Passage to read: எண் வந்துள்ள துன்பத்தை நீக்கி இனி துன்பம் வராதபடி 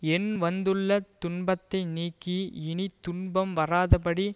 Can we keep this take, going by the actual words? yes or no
yes